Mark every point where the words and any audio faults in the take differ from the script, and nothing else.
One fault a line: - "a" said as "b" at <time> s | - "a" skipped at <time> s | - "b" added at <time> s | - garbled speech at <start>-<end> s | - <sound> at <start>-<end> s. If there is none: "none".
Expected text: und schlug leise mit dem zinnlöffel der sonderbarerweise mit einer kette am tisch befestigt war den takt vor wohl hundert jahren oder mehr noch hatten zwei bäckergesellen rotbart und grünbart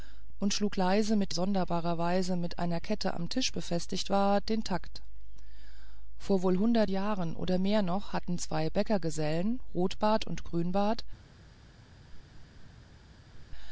- "dem zinnlöffel der" skipped at 1.3 s
- laugh at 12.0-12.7 s
- laugh at 13.3-13.4 s